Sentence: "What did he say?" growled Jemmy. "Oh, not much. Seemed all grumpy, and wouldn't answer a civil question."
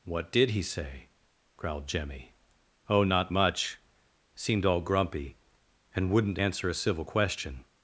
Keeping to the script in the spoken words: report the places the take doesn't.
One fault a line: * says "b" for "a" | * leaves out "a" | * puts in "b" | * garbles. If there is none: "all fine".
all fine